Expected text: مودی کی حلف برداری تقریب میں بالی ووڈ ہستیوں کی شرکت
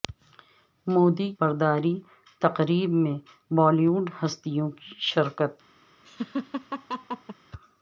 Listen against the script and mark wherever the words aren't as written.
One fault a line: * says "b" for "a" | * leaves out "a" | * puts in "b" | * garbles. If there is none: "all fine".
* leaves out "کی حلف"